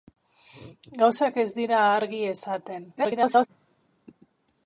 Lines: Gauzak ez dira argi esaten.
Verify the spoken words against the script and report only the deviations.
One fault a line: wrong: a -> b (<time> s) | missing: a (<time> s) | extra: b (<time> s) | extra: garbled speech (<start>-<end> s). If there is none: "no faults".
extra: garbled speech (3.0-3.5 s)